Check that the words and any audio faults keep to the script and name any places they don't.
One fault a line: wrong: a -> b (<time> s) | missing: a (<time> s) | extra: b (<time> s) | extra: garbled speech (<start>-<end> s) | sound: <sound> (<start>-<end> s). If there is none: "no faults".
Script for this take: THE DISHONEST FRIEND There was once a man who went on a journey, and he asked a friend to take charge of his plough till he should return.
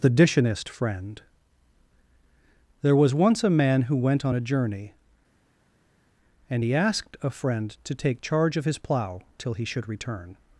no faults